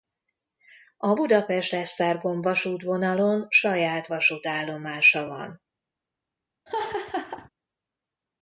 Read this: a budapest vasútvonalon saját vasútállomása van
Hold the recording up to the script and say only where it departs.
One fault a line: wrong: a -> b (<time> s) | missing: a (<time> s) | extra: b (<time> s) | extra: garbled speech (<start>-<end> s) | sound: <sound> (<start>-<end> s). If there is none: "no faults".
extra: esztergom (1.7 s)
sound: laugh (6.7-7.5 s)